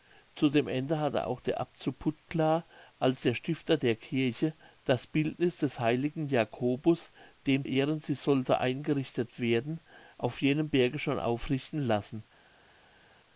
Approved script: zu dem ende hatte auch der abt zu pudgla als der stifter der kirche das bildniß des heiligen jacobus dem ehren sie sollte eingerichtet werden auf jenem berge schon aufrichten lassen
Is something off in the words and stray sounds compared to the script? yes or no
no